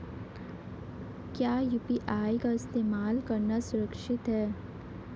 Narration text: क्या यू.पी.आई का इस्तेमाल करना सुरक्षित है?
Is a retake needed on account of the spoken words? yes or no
no